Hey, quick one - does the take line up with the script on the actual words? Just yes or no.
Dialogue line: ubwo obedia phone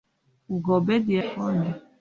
yes